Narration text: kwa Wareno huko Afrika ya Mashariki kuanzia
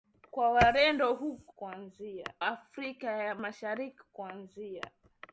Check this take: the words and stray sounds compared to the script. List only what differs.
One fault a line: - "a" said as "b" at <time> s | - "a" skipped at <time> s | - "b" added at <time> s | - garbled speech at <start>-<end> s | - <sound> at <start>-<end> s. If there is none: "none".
- "huko" said as "kuanzia" at 1.5 s